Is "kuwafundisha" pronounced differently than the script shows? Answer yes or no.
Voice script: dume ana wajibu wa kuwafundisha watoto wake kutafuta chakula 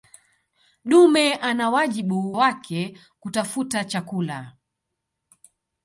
yes